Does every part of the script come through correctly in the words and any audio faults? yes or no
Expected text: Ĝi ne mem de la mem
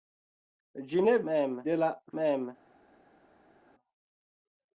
yes